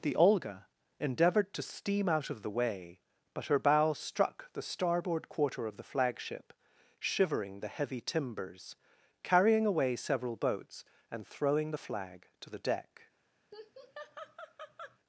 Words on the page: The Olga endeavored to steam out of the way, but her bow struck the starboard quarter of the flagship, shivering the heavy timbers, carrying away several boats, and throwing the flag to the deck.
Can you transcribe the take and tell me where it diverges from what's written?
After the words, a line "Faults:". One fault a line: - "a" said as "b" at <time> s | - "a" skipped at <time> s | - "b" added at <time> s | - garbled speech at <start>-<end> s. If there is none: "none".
The Olga endeavored to steam out of the way, but her bow struck the starboard quarter of the flagship, shivering the heavy timbers, carrying away several boats, and throwing the flag to the deck.
Faults:
none